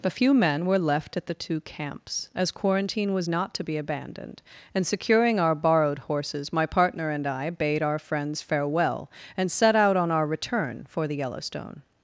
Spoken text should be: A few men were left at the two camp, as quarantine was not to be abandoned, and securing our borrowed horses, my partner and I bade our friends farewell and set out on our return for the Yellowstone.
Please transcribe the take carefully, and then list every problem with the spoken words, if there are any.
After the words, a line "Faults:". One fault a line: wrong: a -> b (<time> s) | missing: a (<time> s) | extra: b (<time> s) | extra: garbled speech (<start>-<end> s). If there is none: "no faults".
A few men were left at the two camps, as quarantine was not to be abandoned, and securing our borrowed horses, my partner and I bade our friends farewell and set out on our return for the Yellowstone.
Faults:
wrong: camp -> camps (1.6 s)